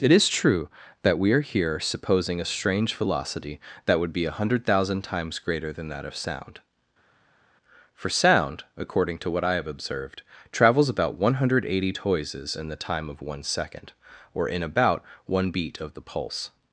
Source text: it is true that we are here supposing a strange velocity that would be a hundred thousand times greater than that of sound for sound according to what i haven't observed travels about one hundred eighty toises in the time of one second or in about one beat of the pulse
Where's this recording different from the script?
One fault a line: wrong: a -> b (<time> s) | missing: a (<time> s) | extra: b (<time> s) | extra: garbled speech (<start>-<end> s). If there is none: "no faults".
wrong: haven't -> have (9.5 s)